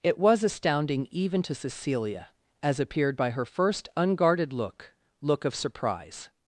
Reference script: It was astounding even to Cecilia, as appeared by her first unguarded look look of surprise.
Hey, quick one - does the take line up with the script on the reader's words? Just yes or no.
yes